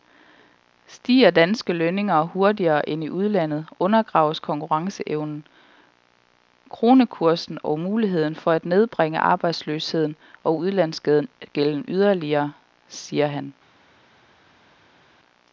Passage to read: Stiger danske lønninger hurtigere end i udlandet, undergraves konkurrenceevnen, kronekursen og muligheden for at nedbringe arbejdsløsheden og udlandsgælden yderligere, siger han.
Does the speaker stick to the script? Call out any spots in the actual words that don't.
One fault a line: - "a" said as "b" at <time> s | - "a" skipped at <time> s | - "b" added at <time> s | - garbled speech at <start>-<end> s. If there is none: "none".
none